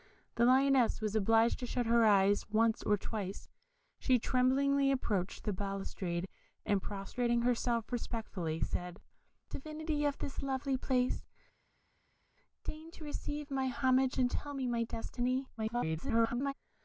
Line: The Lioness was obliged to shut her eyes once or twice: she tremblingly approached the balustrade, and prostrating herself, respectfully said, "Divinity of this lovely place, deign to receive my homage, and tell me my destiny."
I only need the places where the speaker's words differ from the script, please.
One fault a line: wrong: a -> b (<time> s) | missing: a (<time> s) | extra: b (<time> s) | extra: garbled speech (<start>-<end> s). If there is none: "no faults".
extra: garbled speech (15.6-16.5 s)